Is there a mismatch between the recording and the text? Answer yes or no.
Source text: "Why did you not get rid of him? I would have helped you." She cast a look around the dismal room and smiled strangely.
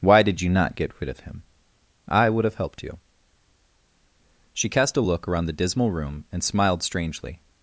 no